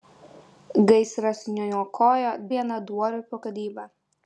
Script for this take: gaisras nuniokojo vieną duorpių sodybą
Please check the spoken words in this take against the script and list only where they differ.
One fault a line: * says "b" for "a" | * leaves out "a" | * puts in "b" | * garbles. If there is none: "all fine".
all fine